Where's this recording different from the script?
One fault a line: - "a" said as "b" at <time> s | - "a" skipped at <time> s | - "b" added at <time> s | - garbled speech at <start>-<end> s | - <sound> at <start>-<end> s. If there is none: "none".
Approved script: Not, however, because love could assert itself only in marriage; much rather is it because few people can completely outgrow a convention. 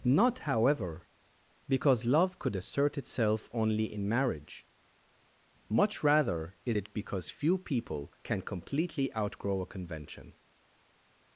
none